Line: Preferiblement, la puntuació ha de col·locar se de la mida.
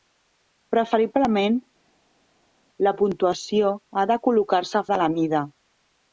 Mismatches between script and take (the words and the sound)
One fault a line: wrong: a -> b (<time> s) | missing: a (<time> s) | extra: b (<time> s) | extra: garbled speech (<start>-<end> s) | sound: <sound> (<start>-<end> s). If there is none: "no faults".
no faults